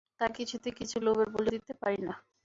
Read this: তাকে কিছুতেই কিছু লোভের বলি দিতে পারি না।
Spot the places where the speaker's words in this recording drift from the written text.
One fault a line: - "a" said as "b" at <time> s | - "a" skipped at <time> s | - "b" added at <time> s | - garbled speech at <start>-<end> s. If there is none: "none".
none